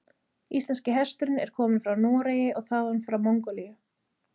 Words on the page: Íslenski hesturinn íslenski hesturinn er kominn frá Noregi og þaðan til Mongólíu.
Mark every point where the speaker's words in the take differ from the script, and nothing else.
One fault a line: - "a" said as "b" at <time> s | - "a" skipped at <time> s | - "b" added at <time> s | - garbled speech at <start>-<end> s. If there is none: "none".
- "íslenski hesturinn" skipped at 1.4 s
- "til" said as "frá" at 3.1 s